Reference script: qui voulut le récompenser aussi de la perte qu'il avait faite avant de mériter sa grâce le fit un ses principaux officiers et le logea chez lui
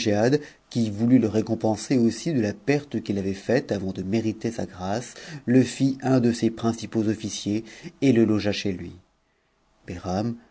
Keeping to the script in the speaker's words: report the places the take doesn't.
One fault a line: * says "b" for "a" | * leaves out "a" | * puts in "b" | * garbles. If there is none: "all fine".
* puts in "de"